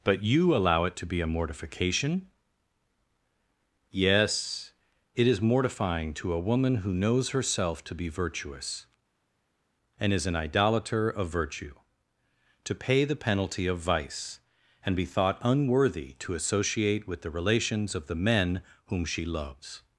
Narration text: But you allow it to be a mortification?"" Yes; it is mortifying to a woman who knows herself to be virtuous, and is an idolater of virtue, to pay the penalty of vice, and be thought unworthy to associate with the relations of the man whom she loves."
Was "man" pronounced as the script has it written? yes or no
no